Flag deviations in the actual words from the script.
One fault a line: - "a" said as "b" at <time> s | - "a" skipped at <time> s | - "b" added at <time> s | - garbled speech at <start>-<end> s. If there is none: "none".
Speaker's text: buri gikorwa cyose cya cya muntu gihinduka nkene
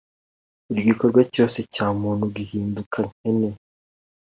- "cya" skipped at 1.9 s